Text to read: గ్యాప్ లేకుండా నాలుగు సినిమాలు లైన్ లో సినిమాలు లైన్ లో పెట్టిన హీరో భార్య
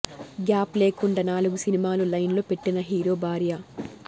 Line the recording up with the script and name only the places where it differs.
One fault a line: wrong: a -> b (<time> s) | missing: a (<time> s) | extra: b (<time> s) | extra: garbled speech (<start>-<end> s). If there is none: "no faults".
missing: సినిమాలు లైన్ లో (2.4 s)